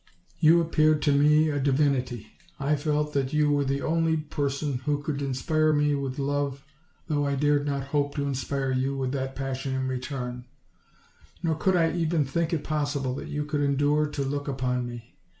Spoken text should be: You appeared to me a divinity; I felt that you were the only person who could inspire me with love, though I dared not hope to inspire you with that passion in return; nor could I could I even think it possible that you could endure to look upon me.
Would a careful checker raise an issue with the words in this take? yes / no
yes